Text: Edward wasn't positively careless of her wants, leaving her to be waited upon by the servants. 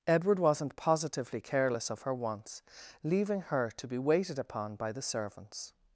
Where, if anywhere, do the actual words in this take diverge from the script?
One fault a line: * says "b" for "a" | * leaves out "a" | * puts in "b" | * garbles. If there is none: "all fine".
all fine